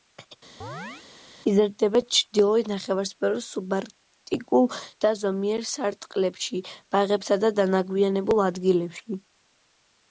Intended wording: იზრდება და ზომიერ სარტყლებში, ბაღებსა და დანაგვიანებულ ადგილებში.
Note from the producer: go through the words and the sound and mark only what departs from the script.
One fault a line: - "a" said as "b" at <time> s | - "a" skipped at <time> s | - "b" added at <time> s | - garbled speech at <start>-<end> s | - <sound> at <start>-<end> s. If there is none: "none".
- chirp at 0.6-1.1 s
- "ჩრდილოეთ ნახევარსფეროს სუბარქტიკულ" added at 2.2 s